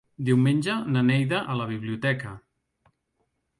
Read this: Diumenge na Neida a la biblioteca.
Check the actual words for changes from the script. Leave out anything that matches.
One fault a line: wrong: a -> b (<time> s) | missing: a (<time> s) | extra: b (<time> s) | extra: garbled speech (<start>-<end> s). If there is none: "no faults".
no faults